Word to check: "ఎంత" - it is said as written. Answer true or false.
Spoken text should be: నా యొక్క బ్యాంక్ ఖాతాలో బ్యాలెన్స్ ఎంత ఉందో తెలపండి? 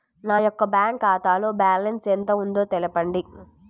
true